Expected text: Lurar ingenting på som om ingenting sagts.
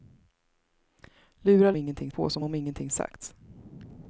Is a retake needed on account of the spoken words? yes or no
no